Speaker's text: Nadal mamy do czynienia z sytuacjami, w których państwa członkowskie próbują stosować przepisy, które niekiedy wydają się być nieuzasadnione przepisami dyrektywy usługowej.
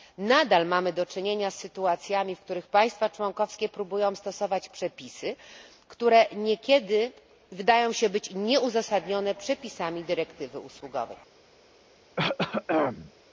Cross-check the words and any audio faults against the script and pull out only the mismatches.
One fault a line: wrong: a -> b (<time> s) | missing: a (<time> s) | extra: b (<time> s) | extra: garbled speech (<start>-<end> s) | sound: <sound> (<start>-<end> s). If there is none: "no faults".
sound: throat clearing (12.2-13.1 s)